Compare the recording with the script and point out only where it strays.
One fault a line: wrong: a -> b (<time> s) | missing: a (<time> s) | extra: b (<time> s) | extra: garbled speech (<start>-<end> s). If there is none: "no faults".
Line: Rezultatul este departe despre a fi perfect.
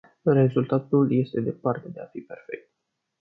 wrong: despre -> de (1.9 s)